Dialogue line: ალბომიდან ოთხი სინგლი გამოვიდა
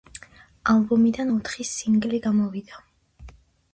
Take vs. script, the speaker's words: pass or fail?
pass